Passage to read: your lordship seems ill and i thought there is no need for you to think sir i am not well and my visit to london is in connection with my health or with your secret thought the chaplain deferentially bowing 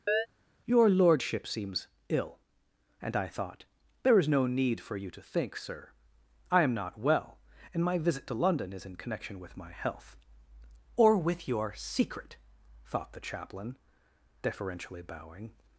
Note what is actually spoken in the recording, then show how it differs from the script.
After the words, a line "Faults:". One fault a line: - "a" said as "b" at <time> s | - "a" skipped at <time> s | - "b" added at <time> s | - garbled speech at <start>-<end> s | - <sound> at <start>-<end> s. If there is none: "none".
your lordship seems ill and i thought there is no need for you to think sir i am not well and my visit to london is in connection with my health or with your secret thought the chaplain deferentially bowing
Faults:
- chirp at 0.1-0.3 s